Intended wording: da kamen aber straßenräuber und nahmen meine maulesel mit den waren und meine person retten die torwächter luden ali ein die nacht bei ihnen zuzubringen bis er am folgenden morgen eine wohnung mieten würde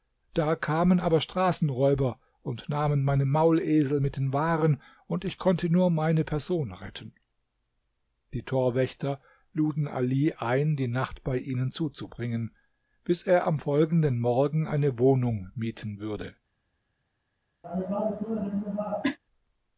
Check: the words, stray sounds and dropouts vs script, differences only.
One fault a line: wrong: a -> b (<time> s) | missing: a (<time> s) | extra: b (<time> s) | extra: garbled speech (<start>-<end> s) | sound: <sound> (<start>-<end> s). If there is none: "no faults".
extra: ich konnte nur (5.2 s)
sound: cough (17.6-19.2 s)